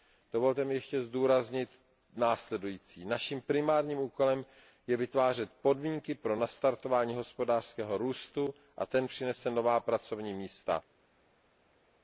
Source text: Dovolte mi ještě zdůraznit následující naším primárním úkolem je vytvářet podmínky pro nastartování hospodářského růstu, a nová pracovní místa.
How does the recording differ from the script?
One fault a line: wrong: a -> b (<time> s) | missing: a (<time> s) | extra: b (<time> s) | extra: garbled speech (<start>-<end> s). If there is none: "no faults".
extra: ten přinese (8.9 s)